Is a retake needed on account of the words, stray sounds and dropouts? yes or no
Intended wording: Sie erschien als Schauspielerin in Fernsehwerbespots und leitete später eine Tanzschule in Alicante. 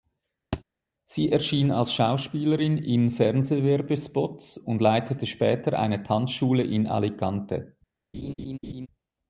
yes